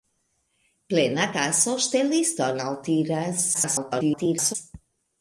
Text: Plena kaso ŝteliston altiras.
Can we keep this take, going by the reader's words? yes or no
no